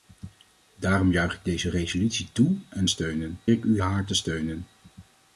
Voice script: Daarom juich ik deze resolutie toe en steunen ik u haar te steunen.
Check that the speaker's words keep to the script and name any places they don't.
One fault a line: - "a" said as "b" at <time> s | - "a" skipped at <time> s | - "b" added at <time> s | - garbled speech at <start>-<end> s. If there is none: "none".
none